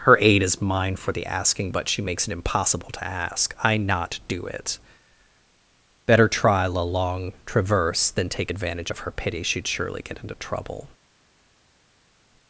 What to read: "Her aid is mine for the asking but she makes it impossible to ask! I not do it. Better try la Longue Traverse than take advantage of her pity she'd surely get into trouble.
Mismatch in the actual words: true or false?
false